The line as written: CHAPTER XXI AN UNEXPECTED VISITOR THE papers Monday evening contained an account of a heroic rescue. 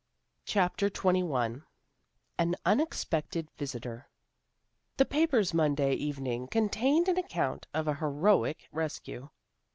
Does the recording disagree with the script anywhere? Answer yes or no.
no